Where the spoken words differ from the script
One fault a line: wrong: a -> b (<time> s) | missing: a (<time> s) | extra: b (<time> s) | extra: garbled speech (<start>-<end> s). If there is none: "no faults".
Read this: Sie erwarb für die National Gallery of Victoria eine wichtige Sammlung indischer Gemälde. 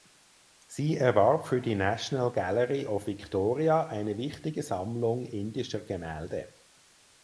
no faults